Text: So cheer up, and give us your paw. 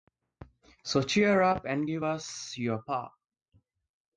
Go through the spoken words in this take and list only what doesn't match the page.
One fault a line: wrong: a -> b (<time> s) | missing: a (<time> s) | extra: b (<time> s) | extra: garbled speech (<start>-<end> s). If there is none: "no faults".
no faults